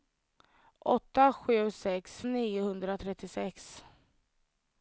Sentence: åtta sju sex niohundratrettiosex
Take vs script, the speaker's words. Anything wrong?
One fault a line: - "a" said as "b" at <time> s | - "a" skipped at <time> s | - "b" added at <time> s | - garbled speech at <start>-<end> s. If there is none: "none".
none